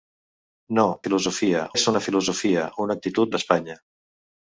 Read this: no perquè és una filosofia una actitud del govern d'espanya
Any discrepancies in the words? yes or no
yes